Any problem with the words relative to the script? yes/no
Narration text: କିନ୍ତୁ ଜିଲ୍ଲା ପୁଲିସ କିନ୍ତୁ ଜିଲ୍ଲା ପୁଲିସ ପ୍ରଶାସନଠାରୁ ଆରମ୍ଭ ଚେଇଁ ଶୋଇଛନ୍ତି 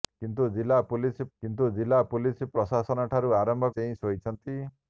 no